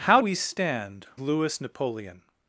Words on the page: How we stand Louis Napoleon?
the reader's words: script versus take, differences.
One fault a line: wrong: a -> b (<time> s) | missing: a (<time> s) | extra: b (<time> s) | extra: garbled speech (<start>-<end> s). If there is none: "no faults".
no faults